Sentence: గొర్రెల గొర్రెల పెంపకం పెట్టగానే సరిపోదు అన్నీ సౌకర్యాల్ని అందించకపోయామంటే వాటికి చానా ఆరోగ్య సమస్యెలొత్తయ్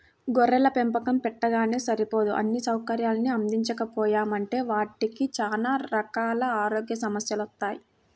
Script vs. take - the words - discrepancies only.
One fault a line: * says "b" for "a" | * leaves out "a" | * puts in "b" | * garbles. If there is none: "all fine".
* leaves out "గొర్రెల"
* puts in "రకాల"